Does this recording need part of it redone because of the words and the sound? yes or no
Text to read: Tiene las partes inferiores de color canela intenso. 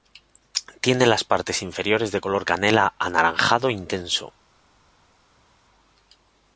yes